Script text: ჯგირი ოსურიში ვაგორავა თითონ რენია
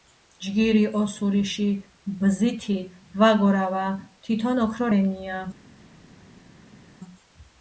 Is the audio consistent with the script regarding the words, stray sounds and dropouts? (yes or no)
no